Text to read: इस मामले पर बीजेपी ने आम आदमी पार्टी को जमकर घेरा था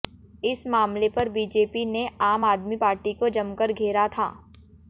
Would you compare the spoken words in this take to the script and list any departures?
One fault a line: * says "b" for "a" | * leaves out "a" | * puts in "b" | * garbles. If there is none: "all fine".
all fine